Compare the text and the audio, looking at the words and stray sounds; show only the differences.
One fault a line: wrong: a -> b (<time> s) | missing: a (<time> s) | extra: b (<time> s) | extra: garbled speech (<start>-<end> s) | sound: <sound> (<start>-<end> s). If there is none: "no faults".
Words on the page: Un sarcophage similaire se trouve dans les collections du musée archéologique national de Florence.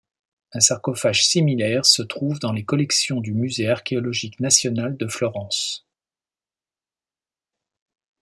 no faults